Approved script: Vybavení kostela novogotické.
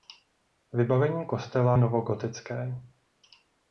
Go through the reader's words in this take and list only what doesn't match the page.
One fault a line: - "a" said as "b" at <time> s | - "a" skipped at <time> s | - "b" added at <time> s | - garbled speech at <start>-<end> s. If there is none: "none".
none